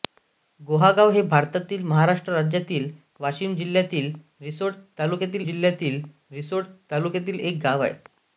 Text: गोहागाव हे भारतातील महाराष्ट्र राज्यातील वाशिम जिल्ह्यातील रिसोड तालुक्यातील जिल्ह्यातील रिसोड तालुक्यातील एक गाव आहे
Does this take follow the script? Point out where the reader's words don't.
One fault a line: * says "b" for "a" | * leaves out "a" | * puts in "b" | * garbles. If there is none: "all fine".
all fine